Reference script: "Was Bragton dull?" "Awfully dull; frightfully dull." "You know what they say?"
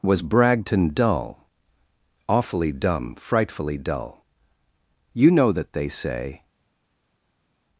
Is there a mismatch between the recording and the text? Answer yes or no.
yes